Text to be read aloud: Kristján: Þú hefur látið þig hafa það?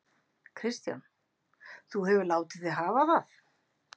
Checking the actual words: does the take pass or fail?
pass